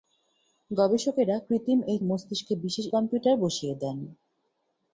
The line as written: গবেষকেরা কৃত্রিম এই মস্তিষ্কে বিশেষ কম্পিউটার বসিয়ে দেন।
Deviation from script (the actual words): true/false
false